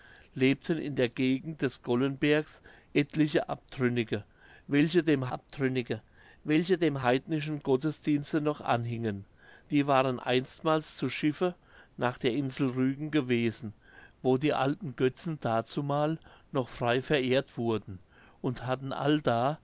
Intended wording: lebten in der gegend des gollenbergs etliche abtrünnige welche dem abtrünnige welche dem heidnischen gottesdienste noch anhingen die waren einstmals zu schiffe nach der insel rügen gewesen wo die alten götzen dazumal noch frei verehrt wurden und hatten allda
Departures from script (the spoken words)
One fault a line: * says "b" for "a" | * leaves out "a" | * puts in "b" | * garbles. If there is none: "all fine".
all fine